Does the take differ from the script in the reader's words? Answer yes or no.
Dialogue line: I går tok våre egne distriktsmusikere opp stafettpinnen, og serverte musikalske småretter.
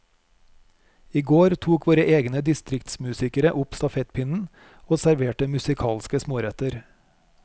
no